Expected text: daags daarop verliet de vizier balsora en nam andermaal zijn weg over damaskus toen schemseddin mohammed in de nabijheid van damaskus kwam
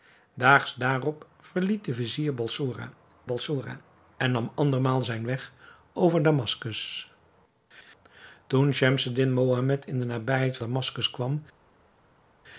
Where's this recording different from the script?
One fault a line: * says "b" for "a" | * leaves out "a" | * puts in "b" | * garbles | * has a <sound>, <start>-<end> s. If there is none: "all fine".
* puts in "balsora"
* leaves out "van"